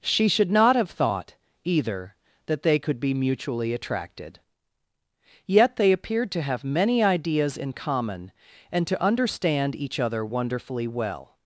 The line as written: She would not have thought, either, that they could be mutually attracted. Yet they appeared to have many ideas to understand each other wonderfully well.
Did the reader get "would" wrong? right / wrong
wrong